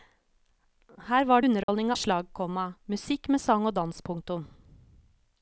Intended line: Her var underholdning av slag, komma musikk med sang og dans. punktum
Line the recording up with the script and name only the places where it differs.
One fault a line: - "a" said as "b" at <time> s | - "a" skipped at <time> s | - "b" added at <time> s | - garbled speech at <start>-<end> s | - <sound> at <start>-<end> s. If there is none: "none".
- dropout at 1.6-1.7 s